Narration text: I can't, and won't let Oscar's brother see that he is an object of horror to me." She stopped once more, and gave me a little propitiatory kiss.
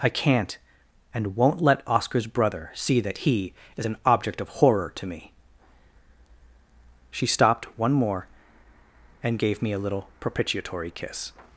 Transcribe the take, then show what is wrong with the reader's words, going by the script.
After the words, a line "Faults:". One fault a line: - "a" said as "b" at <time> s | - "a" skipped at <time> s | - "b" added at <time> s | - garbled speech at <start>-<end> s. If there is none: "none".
I can't, and won't let Oscar's brother see that he is an object of horror to me." She stopped one more, and gave me a little propitiatory kiss.
Faults:
- "once" said as "one" at 7.8 s